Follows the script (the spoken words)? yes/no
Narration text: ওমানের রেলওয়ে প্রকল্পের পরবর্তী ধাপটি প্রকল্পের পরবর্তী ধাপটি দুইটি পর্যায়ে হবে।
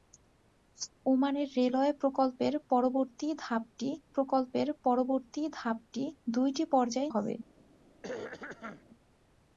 yes